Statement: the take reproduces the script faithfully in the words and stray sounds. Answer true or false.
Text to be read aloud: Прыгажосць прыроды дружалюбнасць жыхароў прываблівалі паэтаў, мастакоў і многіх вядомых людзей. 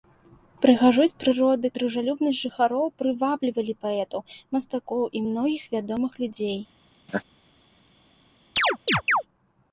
false